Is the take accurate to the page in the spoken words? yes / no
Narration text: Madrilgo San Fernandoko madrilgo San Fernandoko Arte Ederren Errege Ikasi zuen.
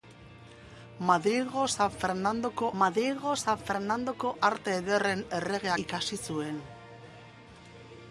yes